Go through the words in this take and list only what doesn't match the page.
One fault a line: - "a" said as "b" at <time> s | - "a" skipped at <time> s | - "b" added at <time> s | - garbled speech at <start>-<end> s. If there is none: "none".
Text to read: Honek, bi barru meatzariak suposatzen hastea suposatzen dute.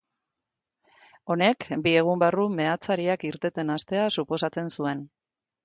- "egun" added at 2.0 s
- "suposatzen" said as "irteten" at 3.3 s
- "dute" said as "zuen" at 4.8 s